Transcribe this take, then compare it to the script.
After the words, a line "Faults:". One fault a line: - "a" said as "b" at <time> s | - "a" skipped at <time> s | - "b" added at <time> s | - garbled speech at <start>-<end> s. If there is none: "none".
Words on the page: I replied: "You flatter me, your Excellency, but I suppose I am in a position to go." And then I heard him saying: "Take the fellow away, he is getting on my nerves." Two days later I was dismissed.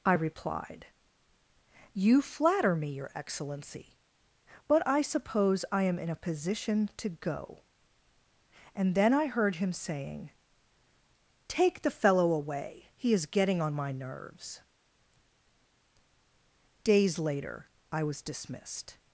I replied: "You flatter me, your Excellency, but I suppose I am in a position to go." And then I heard him saying: "Take the fellow away, he is getting on my nerves." days later I was dismissed.
Faults:
- "Two" skipped at 14.6 s